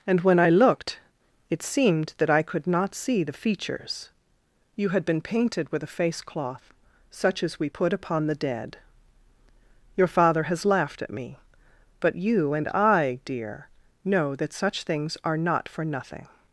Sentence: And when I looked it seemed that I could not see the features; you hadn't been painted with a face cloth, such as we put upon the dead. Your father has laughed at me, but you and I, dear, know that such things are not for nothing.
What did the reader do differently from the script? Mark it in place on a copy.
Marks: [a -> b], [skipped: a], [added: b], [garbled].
And when I looked it seemed that I could not see the features; you [hadn't -> had] been painted with a face cloth, such as we put upon the dead. Your father has laughed at me, but you and I, dear, know that such things are not for nothing.